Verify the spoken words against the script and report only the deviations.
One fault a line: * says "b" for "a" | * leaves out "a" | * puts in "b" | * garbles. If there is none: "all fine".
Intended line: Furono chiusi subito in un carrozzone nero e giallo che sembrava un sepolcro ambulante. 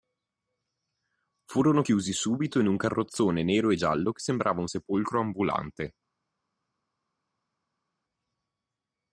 all fine